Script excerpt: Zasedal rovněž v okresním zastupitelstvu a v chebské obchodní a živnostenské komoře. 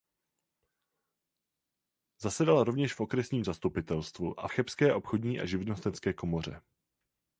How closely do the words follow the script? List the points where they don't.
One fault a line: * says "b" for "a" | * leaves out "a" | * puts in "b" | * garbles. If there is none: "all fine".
all fine